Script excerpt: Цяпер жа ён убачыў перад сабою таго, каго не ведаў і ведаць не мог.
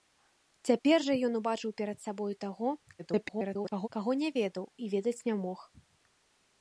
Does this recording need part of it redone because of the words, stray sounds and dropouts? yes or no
yes